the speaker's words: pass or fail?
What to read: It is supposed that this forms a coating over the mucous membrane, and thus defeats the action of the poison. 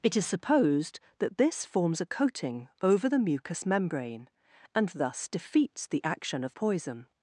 fail